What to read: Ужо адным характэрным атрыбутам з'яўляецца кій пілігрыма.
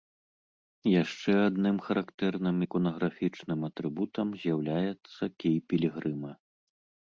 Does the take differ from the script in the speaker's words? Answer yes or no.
yes